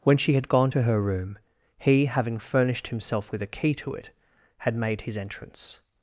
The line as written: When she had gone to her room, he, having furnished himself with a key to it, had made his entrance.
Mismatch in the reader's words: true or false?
false